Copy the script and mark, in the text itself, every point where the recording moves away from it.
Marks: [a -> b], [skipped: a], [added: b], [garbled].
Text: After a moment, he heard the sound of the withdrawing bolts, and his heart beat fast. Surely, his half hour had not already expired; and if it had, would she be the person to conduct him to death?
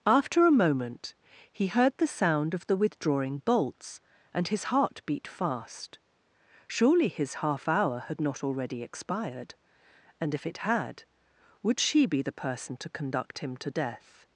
After a moment, he heard the sound of the withdrawing bolts, and his heart beat fast. Surely, his half hour had not already expired; and if it had, would she be the person to conduct him to death?